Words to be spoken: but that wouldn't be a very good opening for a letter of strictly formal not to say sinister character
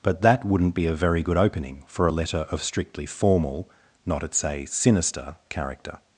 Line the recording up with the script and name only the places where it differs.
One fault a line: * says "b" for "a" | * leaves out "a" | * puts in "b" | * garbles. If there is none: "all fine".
* says "at" for "to"